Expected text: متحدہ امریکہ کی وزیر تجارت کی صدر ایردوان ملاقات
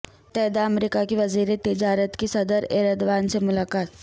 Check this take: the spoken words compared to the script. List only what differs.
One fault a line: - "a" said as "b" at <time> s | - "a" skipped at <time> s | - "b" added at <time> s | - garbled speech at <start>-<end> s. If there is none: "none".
- "سے" added at 3.3 s